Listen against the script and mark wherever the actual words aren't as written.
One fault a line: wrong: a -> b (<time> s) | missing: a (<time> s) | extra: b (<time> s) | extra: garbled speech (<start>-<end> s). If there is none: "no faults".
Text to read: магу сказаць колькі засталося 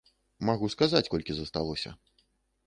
no faults